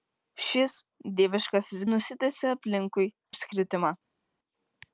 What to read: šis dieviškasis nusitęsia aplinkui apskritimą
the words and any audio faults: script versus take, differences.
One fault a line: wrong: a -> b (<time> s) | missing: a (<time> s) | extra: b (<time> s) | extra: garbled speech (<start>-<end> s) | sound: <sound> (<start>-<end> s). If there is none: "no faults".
no faults